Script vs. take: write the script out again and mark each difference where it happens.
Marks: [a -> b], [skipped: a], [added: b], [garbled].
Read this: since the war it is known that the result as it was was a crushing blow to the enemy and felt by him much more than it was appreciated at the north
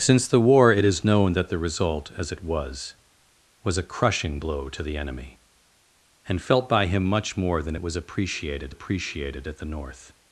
since the war it is known that the result as it was was a crushing blow to the enemy and felt by him much more than it was appreciated [added: appreciated] at the north